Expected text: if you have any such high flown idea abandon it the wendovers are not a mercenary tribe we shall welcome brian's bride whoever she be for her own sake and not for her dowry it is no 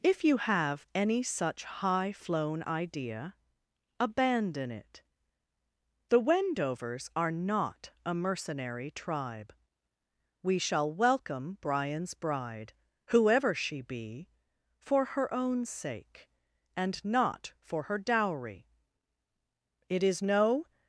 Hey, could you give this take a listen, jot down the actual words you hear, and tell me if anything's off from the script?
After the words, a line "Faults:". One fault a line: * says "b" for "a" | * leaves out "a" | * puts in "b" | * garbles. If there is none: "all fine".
if you have any such high flown idea abandon it the wendovers are not a mercenary tribe we shall welcome brian's bride whoever she be for her own sake and not for her dowry it is no
Faults:
all fine